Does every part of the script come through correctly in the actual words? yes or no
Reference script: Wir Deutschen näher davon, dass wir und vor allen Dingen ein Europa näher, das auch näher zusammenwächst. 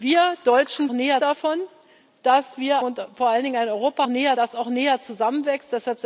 yes